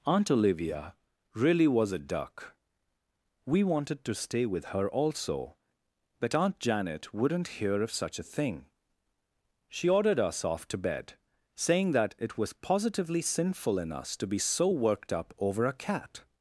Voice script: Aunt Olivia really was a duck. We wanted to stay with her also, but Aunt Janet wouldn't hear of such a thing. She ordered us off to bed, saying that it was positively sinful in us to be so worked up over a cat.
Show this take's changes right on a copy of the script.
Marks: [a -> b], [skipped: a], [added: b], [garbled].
Aunt Olivia really was a duck. We wanted to stay with her also, but Aunt Janet wouldn't hear of such a thing. She ordered us off to bed, saying that it was positively sinful in us to be so worked up over a cat.